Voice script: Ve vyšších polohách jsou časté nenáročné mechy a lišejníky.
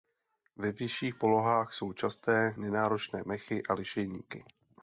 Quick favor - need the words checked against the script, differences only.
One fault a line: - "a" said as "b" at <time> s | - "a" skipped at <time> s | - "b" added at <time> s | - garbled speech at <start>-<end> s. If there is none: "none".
none